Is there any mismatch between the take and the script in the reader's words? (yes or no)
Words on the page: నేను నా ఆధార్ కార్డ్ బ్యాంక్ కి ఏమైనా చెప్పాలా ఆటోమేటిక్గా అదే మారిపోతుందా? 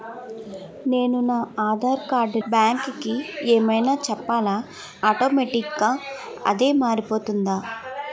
no